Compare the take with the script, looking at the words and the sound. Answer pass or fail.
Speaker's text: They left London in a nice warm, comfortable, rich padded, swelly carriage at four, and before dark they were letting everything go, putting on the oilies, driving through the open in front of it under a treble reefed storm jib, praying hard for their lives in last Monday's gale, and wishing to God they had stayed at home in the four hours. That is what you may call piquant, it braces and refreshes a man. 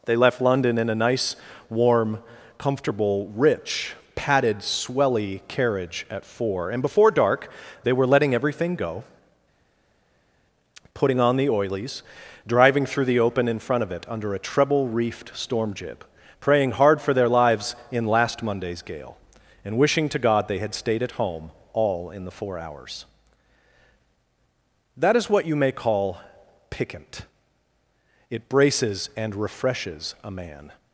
fail